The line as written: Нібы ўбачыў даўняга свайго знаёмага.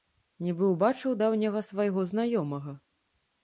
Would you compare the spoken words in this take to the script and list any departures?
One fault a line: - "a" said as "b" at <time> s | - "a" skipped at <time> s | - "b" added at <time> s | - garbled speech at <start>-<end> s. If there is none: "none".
none